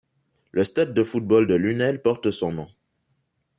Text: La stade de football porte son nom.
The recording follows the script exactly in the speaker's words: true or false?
false